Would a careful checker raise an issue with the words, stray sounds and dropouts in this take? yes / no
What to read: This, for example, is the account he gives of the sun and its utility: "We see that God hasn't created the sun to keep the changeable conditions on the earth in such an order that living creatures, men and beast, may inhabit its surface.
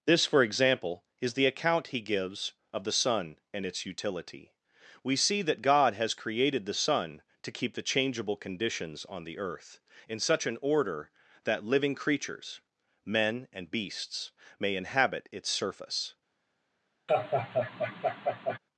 yes